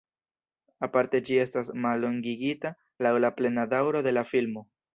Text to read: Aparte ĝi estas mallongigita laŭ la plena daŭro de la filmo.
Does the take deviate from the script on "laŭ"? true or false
false